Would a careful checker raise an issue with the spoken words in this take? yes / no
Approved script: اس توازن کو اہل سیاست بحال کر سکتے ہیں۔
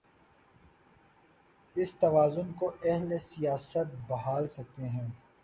yes